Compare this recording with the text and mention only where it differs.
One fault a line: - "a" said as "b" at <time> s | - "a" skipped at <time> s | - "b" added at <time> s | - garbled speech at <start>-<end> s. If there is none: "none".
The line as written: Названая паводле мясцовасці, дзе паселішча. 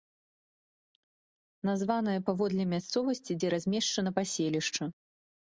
- "размешчана" added at 3.6 s